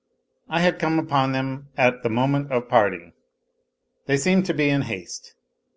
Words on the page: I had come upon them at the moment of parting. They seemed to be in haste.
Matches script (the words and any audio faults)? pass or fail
pass